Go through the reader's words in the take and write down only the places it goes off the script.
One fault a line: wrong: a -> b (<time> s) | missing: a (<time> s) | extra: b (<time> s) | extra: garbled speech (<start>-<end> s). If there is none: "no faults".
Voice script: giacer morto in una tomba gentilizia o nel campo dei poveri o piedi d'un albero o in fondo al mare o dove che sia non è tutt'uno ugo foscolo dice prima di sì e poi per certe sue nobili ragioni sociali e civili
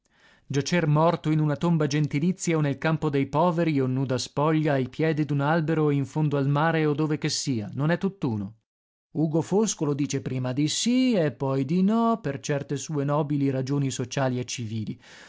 extra: nuda spoglia ai (3.9 s)
extra: di no (11.7 s)